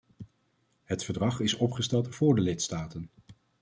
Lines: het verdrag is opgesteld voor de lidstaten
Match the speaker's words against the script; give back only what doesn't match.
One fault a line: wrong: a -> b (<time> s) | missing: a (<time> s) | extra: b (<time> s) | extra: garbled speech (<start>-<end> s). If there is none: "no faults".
no faults